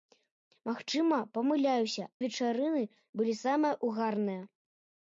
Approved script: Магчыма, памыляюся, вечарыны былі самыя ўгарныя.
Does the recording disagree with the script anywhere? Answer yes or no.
no